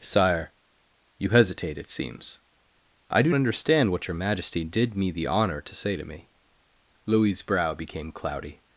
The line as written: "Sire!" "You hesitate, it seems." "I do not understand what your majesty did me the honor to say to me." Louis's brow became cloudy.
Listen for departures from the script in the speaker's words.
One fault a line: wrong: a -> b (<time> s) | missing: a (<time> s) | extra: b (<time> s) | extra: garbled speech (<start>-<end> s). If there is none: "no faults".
missing: not (3.3 s)